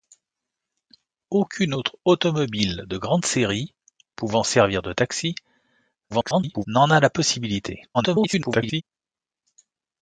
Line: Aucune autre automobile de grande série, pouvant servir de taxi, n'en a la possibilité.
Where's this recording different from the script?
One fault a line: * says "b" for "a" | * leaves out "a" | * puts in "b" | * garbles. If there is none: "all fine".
* garbles
* garbles